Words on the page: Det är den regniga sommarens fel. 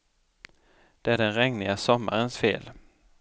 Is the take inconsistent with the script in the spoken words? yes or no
no